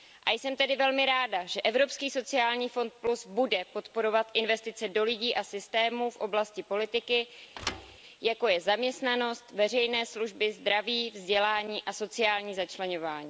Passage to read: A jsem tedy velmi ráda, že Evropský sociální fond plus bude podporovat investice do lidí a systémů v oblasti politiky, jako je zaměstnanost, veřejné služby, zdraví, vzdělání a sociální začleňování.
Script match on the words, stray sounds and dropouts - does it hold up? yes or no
no